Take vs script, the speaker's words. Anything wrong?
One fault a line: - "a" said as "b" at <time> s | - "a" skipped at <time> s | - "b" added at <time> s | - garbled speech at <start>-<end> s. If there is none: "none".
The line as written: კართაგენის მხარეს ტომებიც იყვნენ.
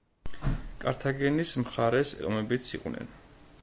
none